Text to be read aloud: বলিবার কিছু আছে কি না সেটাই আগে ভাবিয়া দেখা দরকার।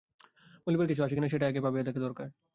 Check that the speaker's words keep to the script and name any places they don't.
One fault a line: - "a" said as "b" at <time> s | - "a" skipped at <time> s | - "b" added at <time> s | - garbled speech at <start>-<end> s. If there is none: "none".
none